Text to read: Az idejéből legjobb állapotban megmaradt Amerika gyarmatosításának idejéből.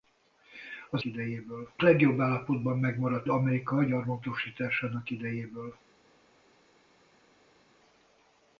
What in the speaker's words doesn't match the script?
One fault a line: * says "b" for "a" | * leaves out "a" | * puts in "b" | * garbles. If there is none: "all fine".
all fine